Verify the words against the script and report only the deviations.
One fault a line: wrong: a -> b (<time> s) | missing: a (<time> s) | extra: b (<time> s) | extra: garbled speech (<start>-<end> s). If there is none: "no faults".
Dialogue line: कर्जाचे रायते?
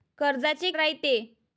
no faults